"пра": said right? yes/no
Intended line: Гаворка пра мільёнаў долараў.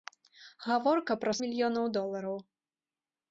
yes